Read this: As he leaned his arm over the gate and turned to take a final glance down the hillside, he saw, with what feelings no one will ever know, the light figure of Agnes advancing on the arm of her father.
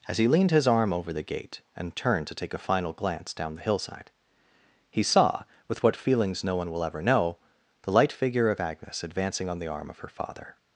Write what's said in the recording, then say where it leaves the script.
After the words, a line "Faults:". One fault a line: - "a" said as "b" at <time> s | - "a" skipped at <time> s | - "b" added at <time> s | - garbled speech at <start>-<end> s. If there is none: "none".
As he leaned his arm over the gate and turned to take a final glance down the hillside, he saw, with what feelings no one will ever know, the light figure of Agnes advancing on the arm of her father.
Faults:
none